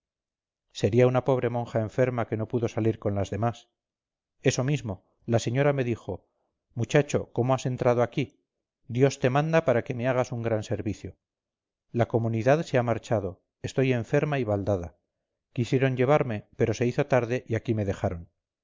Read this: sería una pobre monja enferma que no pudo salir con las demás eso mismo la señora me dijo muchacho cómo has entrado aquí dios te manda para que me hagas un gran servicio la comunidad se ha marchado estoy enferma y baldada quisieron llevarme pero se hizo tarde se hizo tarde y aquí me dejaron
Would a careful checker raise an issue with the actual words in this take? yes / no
yes